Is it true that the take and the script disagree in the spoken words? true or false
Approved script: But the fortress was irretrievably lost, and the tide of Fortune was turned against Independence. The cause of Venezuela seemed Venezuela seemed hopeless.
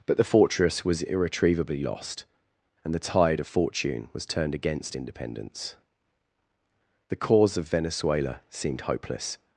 true